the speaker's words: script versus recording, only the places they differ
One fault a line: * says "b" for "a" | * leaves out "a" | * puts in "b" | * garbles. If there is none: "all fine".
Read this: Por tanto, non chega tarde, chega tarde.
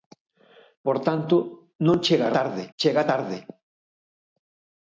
all fine